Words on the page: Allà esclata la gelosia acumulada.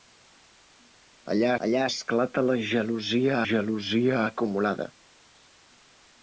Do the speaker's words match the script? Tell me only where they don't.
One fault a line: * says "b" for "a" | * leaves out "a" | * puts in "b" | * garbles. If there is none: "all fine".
* puts in "allà"
* puts in "gelosia"